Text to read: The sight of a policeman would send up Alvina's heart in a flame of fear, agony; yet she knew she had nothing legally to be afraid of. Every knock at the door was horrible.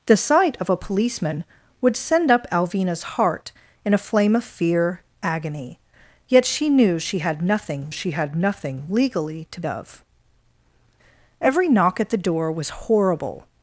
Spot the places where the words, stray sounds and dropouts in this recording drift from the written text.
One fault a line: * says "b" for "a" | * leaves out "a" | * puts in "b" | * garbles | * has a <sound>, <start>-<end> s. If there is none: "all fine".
* puts in "she had nothing"
* leaves out "be afraid"